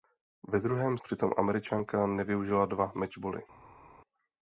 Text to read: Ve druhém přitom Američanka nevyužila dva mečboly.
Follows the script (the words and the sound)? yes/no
yes